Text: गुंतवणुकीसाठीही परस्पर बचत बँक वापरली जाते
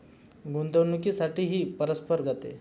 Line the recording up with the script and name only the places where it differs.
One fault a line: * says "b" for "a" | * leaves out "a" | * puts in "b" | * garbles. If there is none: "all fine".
* leaves out "बचत बँक वापरली"